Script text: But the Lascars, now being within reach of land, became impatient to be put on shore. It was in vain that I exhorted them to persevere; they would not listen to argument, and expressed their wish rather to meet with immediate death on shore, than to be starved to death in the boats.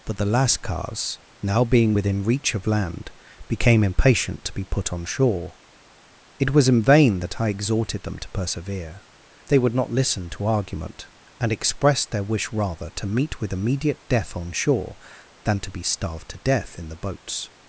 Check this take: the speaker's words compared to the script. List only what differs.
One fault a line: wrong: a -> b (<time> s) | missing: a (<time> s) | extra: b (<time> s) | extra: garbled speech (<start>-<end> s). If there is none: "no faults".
no faults